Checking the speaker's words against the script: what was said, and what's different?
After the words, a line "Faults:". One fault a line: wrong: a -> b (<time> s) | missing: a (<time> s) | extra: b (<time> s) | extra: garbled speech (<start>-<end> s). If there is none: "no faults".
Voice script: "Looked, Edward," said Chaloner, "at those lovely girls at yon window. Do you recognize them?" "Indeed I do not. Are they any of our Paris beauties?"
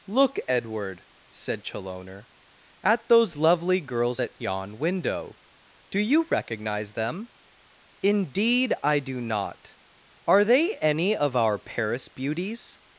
"Look, Edward," said Chaloner, "at those lovely girls at yon window. Do you recognize them?" "Indeed I do not. Are they any of our Paris beauties?"
Faults:
wrong: Looked -> Look (0.1 s)